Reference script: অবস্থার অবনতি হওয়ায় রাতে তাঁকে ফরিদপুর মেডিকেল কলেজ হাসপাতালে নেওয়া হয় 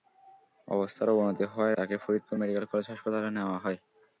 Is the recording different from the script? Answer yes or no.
yes